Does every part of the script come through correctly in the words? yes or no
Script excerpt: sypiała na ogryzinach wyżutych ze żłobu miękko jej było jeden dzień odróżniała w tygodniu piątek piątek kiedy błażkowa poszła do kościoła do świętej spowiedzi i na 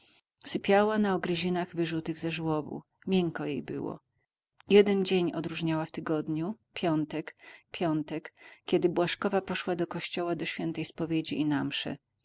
yes